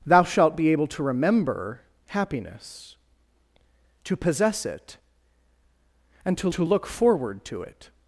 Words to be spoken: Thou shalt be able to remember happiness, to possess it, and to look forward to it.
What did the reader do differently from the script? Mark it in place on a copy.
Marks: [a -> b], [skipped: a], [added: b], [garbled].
Thou shalt be able to remember happiness, to possess it, and to [added: to] look forward to it.